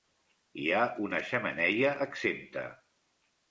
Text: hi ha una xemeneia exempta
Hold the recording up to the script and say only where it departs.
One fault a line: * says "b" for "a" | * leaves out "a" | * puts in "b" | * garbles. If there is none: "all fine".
all fine